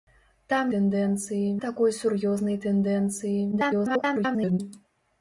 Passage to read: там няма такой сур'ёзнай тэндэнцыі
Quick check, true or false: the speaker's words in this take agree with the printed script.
false